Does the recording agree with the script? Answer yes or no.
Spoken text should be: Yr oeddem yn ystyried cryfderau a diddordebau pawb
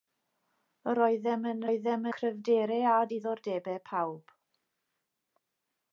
no